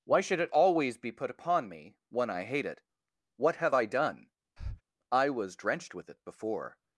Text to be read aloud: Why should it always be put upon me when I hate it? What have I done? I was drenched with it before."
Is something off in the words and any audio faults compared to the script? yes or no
yes